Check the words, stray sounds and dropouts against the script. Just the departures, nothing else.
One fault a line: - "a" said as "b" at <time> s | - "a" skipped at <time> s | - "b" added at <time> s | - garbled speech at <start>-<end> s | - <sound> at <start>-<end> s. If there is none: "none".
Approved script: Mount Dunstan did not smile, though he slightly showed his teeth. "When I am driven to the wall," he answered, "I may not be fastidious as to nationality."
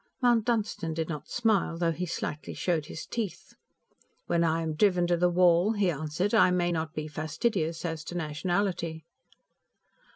none